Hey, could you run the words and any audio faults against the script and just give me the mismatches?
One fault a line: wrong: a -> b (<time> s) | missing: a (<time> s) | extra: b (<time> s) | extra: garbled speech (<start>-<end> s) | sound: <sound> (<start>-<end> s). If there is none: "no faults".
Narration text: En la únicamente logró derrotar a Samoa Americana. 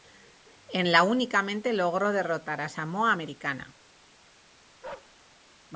sound: bark (4.8-5.2 s)